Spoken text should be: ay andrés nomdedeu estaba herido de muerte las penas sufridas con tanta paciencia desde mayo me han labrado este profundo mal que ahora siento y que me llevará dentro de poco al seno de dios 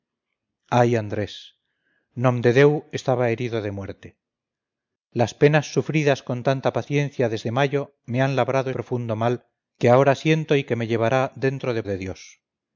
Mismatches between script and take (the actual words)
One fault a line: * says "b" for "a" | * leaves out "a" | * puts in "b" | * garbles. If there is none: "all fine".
* leaves out "este"
* leaves out "poco al seno"